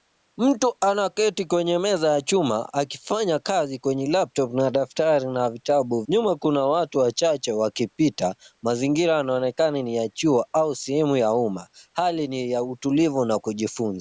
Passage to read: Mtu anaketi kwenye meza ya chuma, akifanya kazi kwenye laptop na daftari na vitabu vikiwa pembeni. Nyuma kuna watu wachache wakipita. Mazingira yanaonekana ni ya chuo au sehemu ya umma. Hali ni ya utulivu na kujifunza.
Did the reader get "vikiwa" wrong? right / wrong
wrong